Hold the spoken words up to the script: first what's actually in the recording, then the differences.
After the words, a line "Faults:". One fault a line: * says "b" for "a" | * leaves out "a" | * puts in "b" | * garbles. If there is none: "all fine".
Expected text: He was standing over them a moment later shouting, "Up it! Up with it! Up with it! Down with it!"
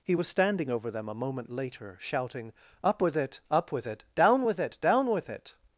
He was standing over them a moment later shouting, "Up with it! Up with it! Down with it! Down with it!"
Faults:
* puts in "with"
* says "Down" for "Up"